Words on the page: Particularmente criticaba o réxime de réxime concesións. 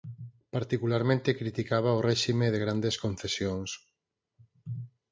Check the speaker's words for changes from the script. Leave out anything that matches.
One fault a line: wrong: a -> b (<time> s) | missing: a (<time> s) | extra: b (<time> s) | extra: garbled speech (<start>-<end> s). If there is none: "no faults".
wrong: réxime -> grandes (2.6 s)